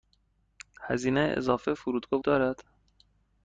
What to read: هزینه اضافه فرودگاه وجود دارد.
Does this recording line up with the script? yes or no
no